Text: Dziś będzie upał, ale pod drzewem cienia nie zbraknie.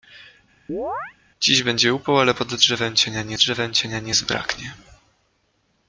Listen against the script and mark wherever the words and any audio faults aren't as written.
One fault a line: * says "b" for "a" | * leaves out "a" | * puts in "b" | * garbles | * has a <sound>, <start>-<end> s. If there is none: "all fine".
* has a chirp, 0.7-1.1 s
* puts in "drzewem cienia nie"